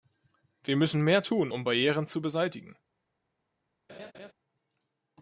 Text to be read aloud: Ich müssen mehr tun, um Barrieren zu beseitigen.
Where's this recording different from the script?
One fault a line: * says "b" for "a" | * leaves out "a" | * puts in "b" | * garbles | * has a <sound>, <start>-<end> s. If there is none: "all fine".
* says "Wir" for "Ich"
* has a laugh, 3.9-4.3 s